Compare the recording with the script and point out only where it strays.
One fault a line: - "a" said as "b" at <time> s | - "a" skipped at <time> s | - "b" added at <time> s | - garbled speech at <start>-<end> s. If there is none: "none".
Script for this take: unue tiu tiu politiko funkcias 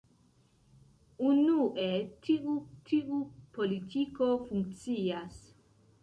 none